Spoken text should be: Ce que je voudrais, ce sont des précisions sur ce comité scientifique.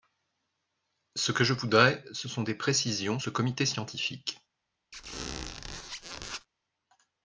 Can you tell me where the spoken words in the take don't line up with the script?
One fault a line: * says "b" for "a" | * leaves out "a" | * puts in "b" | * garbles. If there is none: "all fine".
* leaves out "sur"